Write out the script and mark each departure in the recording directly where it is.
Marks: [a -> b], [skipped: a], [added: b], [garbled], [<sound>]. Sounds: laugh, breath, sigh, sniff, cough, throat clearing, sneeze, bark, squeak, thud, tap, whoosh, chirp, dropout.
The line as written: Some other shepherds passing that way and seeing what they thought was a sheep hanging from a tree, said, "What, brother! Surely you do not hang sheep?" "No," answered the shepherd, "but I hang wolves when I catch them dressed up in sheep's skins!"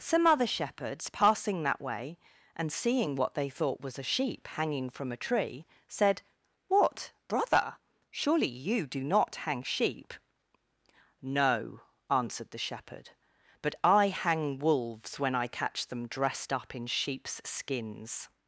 Some other shepherds passing that way and seeing what they thought was a sheep hanging from a tree, said, "What, brother! Surely you do not hang sheep?" "No," answered the shepherd, "but I hang wolves when I catch them dressed up in sheep's skins!"